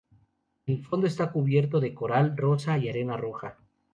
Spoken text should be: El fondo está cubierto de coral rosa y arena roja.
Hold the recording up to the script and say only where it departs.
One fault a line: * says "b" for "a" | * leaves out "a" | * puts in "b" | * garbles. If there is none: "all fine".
all fine